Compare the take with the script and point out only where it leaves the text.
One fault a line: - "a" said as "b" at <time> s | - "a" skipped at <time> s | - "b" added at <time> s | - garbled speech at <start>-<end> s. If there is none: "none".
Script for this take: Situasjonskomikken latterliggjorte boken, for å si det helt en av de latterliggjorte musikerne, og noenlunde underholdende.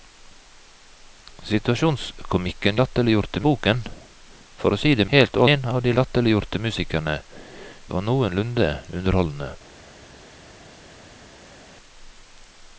none